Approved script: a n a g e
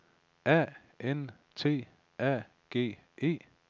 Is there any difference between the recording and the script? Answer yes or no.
yes